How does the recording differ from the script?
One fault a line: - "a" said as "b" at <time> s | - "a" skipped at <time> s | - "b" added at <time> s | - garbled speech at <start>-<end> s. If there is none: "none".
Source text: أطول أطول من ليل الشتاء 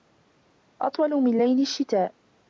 - "أطول" skipped at 1.1 s